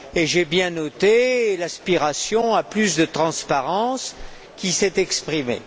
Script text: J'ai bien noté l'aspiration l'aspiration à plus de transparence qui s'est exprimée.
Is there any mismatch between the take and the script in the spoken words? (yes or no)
yes